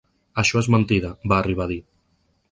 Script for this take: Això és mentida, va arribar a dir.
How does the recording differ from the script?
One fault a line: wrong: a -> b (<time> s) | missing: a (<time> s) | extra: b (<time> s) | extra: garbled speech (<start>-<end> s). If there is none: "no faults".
no faults